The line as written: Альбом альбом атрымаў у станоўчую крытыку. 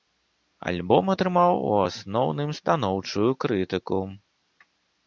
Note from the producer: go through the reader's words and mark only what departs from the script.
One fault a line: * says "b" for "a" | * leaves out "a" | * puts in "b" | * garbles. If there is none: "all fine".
* leaves out "альбом"
* puts in "асноўным"